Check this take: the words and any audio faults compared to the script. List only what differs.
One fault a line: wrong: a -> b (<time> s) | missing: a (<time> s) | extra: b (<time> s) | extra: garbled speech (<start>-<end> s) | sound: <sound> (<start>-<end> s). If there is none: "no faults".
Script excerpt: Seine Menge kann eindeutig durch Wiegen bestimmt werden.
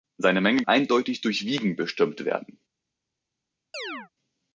missing: kann (0.6 s)
sound: chirp (3.7-4.1 s)